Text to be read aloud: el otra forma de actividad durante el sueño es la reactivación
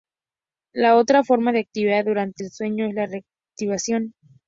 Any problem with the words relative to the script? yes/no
yes